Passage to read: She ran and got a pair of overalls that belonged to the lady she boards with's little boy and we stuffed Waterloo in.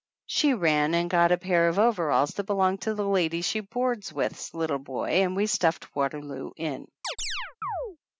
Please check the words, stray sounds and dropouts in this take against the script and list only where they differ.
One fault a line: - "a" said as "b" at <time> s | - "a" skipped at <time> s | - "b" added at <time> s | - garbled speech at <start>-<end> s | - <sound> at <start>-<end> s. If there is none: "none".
- chirp at 7.0-8.0 s